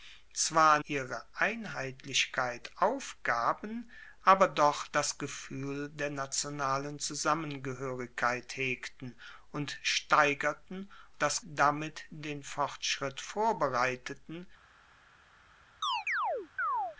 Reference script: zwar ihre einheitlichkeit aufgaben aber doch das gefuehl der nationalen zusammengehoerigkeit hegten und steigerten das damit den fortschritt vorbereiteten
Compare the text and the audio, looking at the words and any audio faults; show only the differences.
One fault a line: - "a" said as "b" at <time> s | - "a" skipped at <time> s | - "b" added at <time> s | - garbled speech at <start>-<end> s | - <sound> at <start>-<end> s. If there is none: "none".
- chirp at 15.8-17.0 s